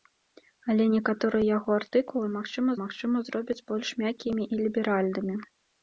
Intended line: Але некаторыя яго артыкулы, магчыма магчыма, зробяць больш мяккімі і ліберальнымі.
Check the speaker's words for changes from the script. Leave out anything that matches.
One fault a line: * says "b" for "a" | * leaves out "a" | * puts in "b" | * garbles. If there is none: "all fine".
all fine